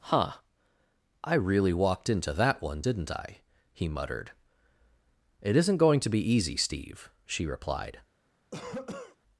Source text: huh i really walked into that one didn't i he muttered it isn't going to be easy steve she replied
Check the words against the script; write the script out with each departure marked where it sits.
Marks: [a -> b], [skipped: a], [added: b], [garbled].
huh i really walked into that one didn't i he muttered it isn't going to be easy steve she replied